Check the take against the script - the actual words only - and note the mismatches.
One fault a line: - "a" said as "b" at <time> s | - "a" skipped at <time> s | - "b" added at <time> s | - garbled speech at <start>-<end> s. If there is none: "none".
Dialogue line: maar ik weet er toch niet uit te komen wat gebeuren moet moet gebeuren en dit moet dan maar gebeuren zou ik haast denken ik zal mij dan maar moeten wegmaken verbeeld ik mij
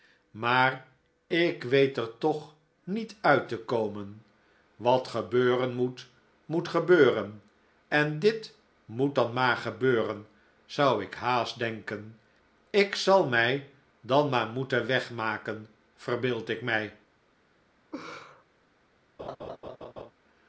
none